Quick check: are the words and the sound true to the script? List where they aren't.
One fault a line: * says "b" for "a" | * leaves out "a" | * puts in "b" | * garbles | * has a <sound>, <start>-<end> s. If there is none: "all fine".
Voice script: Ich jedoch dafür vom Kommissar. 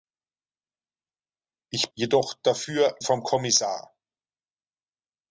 all fine